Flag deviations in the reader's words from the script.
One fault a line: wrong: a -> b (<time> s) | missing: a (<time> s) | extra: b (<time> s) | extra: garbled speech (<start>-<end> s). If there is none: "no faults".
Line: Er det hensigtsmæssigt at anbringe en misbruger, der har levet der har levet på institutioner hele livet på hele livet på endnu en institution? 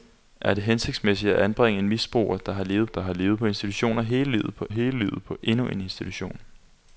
no faults